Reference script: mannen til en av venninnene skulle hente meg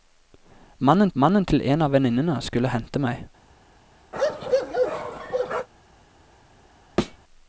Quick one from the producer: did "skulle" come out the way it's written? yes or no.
yes